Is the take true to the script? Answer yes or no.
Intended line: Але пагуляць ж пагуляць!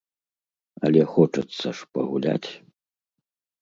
no